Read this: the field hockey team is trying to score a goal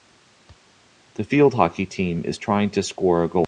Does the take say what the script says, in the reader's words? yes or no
yes